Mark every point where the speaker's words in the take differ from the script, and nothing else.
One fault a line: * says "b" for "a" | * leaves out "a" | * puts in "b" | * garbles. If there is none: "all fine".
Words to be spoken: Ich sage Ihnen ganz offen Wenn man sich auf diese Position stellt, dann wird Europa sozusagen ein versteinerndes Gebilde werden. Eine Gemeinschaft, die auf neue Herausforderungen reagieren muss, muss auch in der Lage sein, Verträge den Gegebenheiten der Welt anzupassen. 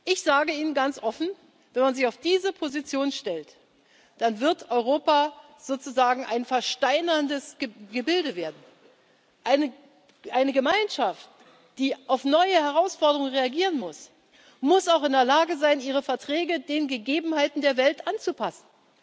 * puts in "ihre"